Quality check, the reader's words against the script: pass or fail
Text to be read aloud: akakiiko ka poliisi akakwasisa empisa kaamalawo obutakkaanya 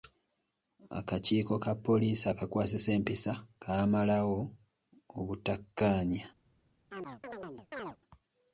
pass